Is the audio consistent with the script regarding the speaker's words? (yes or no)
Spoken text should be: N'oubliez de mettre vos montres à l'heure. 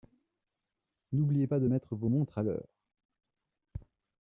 no